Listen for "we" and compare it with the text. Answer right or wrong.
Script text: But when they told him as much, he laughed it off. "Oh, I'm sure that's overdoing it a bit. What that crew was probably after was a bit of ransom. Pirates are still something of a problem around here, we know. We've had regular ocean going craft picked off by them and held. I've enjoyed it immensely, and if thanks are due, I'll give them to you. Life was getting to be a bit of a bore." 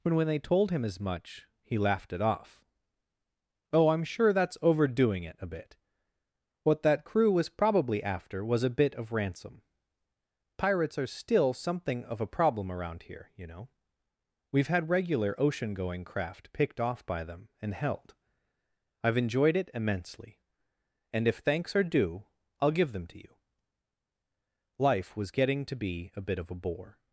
wrong